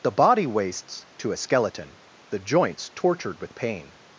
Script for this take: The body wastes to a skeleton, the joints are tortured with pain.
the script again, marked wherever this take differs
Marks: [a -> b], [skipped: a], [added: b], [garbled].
The body wastes to a skeleton, the joints [skipped: are] tortured with pain.